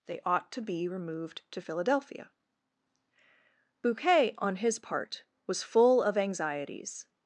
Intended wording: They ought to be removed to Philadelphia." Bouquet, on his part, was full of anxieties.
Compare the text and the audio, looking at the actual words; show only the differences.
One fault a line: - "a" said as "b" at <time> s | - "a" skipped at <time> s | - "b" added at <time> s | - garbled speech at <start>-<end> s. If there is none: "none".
none